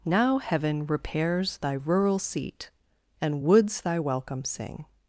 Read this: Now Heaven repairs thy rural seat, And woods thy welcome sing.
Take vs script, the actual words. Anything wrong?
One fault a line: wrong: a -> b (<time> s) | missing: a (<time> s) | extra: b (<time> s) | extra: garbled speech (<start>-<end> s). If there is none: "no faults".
no faults